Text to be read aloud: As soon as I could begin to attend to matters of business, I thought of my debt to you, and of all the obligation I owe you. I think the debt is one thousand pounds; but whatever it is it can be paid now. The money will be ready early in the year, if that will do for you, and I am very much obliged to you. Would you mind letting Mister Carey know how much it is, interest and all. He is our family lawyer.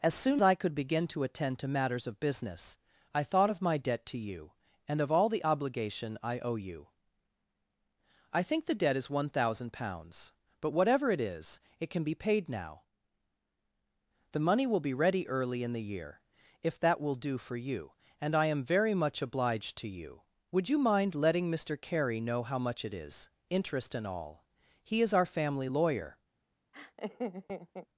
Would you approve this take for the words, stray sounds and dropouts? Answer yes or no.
no